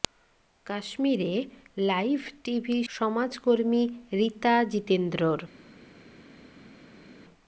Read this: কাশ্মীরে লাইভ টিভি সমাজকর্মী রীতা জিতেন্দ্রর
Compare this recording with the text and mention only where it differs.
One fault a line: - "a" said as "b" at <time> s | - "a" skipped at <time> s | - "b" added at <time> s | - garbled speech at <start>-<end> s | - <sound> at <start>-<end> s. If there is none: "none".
none